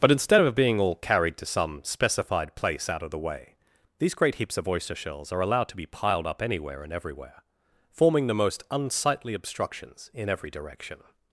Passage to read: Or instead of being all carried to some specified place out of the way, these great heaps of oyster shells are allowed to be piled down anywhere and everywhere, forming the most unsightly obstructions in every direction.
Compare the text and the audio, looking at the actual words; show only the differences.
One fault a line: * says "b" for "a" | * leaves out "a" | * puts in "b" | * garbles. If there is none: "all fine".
* says "But" for "Or"
* says "up" for "down"